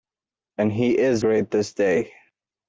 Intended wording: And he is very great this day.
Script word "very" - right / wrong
wrong